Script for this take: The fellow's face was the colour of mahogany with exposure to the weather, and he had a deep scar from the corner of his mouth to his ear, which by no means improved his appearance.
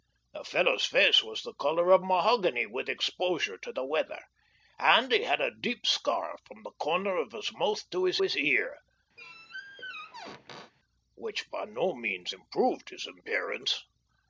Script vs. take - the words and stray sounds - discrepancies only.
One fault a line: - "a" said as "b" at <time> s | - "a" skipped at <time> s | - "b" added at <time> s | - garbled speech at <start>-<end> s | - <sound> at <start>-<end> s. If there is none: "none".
- "his" added at 8.2 s
- squeak at 9.2-10.7 s